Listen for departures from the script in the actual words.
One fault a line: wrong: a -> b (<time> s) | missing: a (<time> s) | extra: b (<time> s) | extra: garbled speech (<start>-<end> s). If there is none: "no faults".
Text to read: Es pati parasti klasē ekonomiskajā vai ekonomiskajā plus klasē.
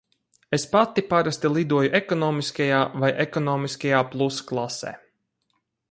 wrong: klasē -> lidoju (1.6 s)